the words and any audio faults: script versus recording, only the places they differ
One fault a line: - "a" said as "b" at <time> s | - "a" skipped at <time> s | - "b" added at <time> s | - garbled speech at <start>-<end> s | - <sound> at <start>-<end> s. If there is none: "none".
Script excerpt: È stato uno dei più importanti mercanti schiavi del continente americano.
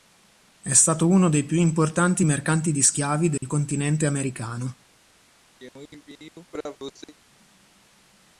- "di" added at 2.7 s
- dropout at 3.4-3.4 s
- throat clearing at 5.6-7.1 s